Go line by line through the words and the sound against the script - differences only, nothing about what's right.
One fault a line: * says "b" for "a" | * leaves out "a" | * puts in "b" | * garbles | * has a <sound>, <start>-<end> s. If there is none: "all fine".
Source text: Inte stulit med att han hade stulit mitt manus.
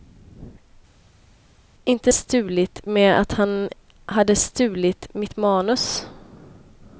all fine